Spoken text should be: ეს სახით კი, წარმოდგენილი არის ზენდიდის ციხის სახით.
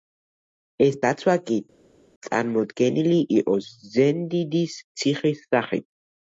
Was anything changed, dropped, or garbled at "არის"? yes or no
yes